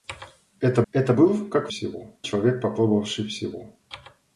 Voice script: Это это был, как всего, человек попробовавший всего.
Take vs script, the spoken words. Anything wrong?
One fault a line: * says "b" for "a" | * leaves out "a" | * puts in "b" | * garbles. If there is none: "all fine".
all fine